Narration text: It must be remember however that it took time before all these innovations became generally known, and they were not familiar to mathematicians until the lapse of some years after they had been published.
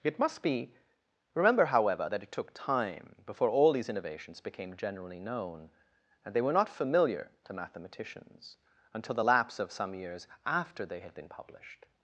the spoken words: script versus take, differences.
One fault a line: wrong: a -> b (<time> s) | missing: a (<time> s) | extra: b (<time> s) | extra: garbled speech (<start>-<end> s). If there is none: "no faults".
no faults